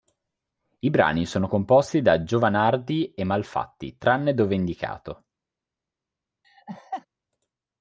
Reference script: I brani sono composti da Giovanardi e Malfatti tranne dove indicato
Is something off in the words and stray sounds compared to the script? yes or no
yes